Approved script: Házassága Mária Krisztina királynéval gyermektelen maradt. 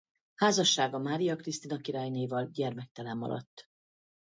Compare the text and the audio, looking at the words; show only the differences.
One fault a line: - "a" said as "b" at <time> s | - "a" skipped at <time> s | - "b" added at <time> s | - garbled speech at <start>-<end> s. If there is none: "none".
none